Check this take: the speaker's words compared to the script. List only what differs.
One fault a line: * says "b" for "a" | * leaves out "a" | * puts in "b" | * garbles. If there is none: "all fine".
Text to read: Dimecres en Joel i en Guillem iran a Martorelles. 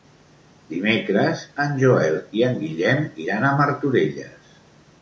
all fine